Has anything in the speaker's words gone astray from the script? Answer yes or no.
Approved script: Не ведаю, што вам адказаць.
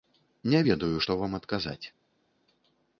no